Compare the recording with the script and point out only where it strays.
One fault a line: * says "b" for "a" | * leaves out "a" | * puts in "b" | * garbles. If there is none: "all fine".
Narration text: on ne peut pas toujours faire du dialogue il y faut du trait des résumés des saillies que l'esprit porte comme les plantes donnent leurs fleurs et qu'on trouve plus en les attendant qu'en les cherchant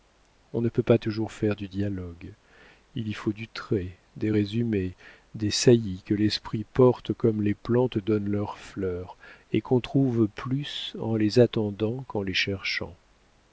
all fine